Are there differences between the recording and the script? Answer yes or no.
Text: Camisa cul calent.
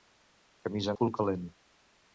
no